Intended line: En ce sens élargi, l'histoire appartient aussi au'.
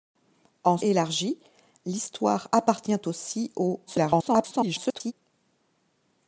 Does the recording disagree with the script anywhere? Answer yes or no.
yes